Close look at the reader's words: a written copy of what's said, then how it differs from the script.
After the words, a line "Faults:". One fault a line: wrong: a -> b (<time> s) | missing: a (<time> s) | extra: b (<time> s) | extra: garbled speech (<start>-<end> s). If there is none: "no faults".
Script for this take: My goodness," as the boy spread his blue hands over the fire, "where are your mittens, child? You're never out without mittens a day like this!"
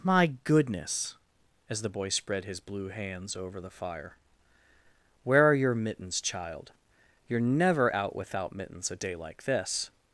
My goodness," as the boy spread his blue hands over the fire, "where are your mittens, child? You're never out without mittens a day like this!"
Faults:
no faults